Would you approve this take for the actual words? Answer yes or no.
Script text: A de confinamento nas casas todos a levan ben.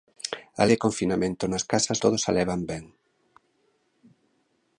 yes